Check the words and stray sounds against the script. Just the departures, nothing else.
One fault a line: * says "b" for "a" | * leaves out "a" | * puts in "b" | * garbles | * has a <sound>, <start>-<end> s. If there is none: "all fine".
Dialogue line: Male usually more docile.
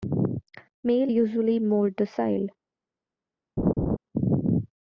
* has a laugh, 3.6-4.0 s